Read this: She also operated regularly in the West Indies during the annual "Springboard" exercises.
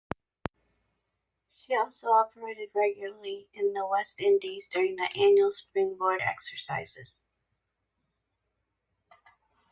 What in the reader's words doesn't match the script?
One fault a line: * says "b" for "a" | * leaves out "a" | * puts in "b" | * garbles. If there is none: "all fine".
all fine